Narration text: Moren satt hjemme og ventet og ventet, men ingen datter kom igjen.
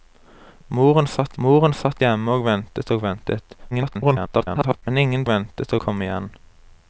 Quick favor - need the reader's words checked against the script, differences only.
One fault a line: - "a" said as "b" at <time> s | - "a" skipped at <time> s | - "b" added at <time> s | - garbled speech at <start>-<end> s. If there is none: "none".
- "moren satt" added at 1.4 s
- garbled speech at 3.7-4.8 s
- "datter" said as "ventet" at 5.3 s